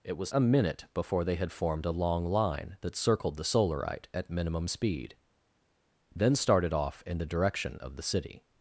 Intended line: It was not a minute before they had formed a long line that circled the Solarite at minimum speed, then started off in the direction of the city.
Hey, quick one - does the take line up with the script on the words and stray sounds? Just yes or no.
no